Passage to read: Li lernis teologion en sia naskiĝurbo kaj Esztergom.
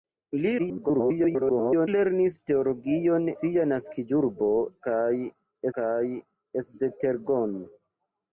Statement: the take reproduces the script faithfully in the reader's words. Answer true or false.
false